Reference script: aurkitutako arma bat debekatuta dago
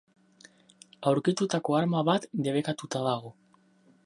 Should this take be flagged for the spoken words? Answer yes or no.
no